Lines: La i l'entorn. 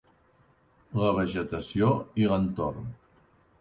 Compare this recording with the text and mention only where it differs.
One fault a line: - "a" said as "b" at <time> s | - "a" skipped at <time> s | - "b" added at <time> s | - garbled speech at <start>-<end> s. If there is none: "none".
- "vegetació" added at 1.2 s